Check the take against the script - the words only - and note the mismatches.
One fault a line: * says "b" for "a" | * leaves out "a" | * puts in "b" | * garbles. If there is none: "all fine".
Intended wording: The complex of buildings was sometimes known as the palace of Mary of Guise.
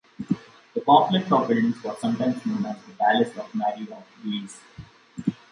all fine